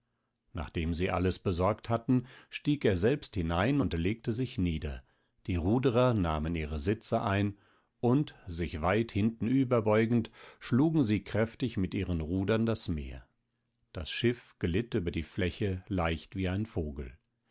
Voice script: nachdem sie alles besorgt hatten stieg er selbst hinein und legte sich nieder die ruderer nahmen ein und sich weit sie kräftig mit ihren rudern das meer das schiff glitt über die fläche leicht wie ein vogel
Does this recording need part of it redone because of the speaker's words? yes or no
yes